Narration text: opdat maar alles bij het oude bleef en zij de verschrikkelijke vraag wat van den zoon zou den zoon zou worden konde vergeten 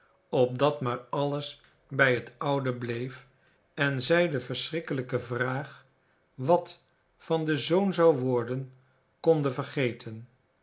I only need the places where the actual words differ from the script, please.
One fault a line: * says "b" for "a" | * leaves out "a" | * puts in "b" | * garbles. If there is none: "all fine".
* leaves out "den zoon zou"